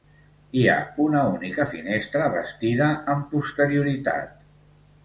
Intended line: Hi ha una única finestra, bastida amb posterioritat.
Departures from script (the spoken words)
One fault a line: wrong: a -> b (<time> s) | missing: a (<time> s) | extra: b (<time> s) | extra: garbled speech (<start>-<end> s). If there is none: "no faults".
no faults